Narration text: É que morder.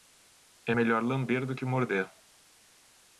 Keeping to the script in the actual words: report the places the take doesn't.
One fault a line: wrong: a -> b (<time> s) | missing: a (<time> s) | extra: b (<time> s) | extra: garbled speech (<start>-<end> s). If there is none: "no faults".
extra: melhor lamber do (0.7 s)